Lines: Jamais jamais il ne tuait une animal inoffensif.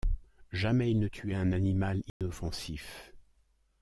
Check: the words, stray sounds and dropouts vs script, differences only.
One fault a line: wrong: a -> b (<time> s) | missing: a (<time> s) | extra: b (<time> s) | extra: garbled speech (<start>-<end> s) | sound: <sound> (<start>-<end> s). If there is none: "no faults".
missing: jamais (0.9 s)
wrong: une -> un (1.3 s)
sound: dropout (2.1-2.2 s)